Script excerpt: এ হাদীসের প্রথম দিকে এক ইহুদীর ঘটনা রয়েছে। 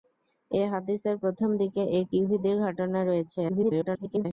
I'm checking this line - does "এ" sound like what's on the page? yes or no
yes